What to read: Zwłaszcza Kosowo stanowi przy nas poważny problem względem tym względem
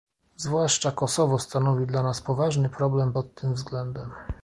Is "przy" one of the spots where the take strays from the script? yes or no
yes